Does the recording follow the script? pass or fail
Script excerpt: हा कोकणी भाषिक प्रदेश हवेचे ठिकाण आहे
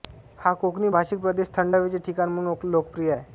fail